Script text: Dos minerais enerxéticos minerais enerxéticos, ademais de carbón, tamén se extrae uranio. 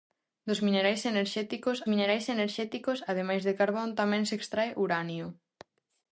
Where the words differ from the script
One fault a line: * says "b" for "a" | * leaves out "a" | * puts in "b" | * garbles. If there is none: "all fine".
all fine